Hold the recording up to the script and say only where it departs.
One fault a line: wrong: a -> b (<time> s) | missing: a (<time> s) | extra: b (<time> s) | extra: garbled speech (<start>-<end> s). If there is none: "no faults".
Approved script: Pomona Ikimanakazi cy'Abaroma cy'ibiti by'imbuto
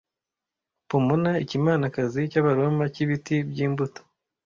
no faults